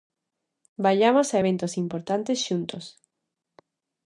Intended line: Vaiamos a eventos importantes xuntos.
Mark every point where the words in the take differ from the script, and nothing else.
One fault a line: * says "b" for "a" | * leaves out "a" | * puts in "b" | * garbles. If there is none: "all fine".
all fine